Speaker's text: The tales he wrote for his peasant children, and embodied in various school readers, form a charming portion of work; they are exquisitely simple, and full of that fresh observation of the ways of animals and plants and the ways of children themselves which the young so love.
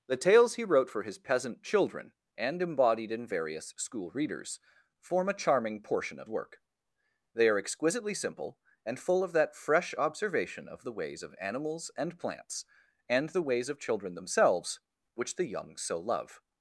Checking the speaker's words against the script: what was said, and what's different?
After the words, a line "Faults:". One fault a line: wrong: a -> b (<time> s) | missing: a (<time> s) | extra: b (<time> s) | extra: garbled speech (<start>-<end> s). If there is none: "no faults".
The tales he wrote for his peasant children, and embodied in various school readers, form a charming portion of work; they are exquisitely simple, and full of that fresh observation of the ways of animals and plants and the ways of children themselves which the young so love.
Faults:
no faults